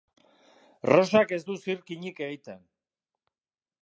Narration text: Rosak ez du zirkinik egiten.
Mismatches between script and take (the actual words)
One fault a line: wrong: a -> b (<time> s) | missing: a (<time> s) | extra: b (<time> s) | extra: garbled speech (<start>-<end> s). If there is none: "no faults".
no faults